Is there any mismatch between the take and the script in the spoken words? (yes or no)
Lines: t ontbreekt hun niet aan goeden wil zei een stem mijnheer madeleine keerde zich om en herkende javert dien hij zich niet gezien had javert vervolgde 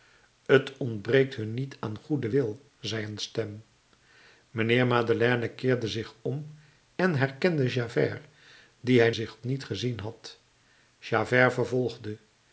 no